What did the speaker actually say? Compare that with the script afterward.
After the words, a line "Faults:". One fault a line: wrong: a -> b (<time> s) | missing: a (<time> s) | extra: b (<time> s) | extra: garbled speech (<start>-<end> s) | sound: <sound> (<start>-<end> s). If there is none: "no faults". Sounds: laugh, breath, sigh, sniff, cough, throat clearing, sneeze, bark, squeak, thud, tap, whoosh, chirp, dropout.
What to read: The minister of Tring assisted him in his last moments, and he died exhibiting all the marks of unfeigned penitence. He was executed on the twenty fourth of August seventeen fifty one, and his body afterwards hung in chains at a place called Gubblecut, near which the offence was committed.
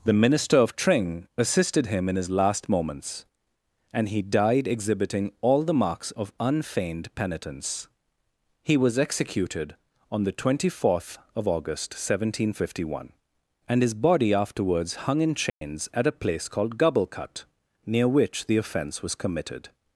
The minister of Tring assisted him in his last moments, and he died exhibiting all the marks of unfeigned penitence. He was executed on the twenty fourth of August seventeen fifty one, and his body afterwards hung in chains at a place called Gubblecut, near which the offence was committed.
Faults:
sound: dropout (15.5-15.6 s)